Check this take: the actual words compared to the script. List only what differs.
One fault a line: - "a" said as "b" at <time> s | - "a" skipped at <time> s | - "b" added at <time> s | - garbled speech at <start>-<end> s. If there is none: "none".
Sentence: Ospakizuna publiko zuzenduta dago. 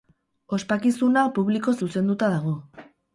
none